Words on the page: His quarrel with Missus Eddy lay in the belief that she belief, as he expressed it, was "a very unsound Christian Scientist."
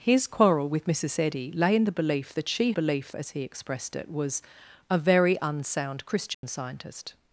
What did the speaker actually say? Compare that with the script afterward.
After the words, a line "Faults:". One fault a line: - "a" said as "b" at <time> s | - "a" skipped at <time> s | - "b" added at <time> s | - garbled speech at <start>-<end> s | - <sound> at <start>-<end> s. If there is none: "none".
His quarrel with Missus Eddy lay in the belief that she belief, as he expressed it, was "a very unsound Christian Scientist."
Faults:
- dropout at 6.3-6.4 s